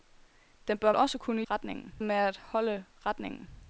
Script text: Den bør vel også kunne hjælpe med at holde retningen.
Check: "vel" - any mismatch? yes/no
yes